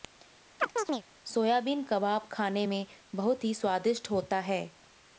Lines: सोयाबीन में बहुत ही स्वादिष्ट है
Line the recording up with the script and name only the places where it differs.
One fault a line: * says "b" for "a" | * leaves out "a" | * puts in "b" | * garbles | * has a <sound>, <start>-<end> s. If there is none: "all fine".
* has a chirp, 0.6-1.0 s
* puts in "कबाब खाने"
* puts in "होता"